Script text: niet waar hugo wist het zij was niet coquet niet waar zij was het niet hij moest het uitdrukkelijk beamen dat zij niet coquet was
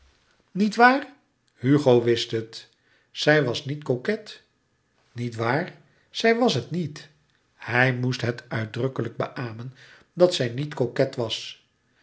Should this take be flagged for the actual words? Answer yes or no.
no